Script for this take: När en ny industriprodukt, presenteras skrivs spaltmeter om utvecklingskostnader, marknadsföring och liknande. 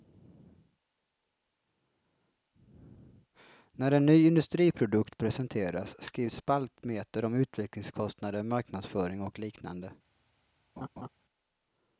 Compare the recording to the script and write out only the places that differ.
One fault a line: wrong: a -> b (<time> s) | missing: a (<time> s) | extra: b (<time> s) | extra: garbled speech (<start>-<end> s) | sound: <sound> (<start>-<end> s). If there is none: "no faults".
sound: laugh (10.8-11.1 s)